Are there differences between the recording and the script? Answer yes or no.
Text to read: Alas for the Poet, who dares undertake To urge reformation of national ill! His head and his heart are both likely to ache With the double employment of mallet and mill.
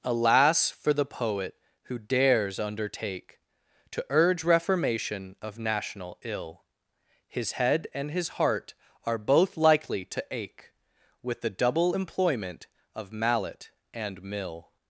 no